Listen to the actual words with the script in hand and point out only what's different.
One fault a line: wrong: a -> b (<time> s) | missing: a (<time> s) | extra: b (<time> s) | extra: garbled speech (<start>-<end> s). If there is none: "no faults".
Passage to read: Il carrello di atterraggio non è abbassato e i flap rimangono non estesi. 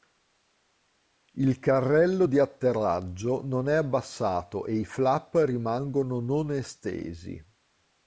no faults